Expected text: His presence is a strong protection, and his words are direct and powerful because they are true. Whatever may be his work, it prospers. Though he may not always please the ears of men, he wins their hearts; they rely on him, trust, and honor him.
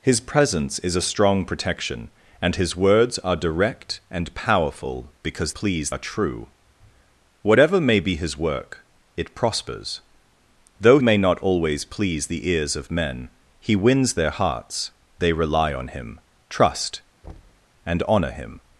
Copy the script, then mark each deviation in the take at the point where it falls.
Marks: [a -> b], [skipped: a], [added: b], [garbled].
His presence is a strong protection, and his words are direct and powerful because [they -> please] are true. Whatever may be his work, it prospers. Though [skipped: he] may not always please the ears of men, he wins their hearts; they rely on him, trust, and honor him.